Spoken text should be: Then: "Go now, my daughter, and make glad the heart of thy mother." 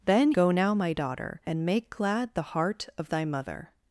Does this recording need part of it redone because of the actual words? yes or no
no